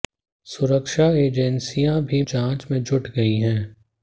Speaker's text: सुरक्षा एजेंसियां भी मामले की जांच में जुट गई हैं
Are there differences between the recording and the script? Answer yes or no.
yes